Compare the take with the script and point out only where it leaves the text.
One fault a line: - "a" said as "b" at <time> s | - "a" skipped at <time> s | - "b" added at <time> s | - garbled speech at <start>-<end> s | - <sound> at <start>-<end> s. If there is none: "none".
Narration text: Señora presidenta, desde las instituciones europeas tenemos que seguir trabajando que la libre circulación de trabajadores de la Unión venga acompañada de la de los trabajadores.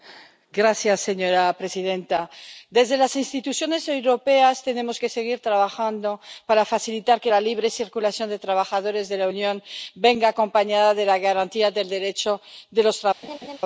- "para facilitar" added at 6.5 s
- "garantía del Derecho" added at 11.2 s
- laugh at 13.2-13.6 s